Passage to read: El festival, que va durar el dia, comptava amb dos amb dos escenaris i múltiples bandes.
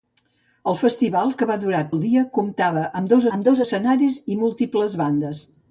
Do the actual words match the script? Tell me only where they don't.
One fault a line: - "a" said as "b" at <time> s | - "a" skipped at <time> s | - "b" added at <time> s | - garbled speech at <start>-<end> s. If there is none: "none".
none